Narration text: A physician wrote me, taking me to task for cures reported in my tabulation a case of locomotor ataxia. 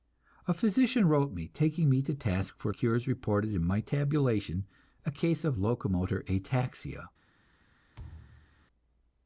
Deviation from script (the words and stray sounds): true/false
true